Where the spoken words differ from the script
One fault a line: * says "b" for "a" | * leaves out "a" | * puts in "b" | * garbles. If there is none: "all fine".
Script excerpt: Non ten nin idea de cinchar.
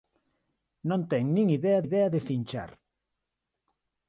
* puts in "idea"